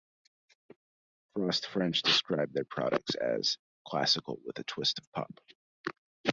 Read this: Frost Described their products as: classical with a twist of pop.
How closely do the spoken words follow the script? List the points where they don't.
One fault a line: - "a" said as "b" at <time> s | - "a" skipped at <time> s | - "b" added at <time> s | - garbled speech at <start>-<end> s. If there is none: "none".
- "French" added at 1.7 s